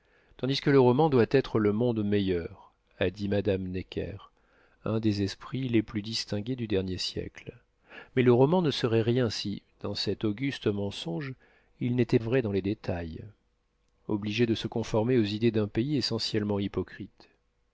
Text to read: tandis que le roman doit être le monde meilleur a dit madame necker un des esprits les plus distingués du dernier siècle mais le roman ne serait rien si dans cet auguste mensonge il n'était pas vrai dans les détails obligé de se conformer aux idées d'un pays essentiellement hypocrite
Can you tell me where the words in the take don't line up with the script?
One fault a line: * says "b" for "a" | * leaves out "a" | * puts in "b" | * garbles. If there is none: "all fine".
* leaves out "pas"